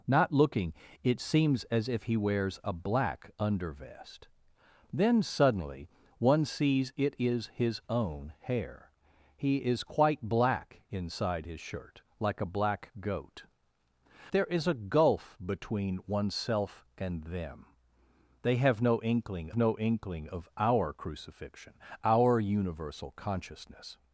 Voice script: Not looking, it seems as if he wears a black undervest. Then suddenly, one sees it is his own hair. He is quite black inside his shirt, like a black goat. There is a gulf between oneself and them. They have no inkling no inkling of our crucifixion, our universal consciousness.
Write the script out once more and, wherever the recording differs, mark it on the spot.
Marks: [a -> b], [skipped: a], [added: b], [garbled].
Not looking, it seems as if he wears a black undervest. Then suddenly, one sees it is his own hair. He is quite black inside his shirt, like a black goat. There is a gulf between oneself and them. They have no inkling no inkling of our crucifixion, our universal consciousness.